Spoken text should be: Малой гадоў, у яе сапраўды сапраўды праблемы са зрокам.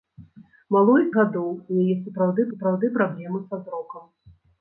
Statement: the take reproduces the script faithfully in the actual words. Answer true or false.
true